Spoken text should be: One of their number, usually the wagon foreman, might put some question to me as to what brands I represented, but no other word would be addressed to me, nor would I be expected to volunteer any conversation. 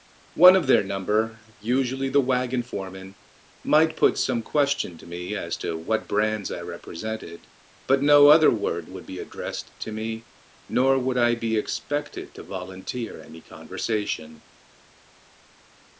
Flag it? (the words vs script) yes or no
no